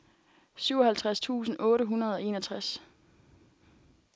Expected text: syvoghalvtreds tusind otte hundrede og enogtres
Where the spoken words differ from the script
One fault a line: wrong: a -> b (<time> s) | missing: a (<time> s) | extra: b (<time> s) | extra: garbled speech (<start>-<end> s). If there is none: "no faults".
no faults